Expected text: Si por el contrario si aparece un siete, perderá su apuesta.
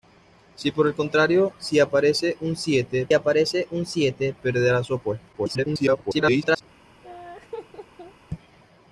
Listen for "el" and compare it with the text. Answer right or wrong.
right